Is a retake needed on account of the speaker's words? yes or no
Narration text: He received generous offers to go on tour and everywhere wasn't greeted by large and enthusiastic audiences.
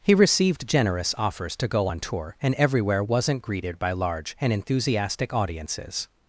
no